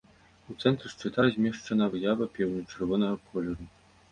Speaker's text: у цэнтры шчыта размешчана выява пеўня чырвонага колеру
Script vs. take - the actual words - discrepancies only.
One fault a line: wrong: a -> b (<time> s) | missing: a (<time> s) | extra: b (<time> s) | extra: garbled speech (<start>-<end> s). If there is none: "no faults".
no faults